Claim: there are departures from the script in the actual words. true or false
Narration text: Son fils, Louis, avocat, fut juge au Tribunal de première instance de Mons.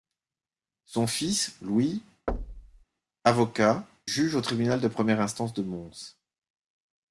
true